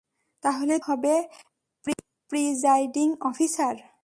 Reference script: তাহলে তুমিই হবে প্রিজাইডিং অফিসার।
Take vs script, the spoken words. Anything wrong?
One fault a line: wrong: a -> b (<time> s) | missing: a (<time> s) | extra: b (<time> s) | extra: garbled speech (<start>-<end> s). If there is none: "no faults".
missing: তুমিই (0.8 s)